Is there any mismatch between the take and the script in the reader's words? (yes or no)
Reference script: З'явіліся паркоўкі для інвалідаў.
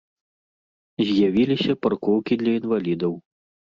no